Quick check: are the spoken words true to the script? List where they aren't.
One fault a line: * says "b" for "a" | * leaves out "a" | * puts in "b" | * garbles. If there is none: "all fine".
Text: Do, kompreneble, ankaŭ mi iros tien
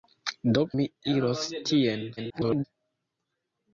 * leaves out "kompreneble ankaŭ"
* garbles